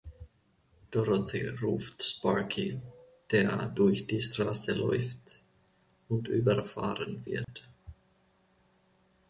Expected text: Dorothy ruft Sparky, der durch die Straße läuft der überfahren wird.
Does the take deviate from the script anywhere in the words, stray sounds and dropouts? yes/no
yes